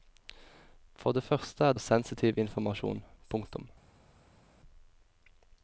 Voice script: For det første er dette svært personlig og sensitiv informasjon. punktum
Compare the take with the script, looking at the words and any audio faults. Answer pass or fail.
fail